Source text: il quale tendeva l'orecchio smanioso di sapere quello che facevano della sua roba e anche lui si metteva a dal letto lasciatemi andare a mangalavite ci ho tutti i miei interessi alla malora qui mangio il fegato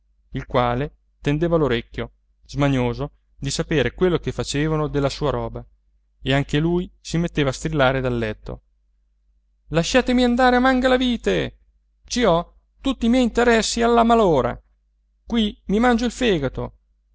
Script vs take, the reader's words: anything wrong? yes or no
yes